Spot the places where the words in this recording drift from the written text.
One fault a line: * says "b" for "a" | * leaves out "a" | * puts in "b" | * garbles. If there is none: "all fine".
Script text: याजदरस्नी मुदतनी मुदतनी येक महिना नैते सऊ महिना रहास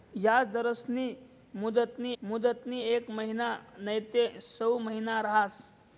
all fine